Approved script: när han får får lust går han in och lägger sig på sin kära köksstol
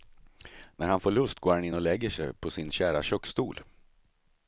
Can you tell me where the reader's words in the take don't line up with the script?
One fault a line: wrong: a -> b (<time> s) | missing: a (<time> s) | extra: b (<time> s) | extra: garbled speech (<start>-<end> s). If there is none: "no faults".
missing: får (1.1 s)